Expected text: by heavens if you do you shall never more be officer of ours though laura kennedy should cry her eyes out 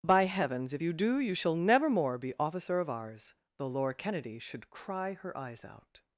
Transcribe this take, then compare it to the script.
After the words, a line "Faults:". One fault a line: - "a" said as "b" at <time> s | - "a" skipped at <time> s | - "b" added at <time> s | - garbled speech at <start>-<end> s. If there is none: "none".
by heavens if you do you shall never more be officer of ours though laura kennedy should cry her eyes out
Faults:
none